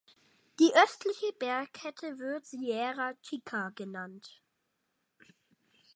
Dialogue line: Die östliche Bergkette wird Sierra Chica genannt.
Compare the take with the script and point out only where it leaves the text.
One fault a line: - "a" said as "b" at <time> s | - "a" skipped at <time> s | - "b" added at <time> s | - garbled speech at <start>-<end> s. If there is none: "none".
none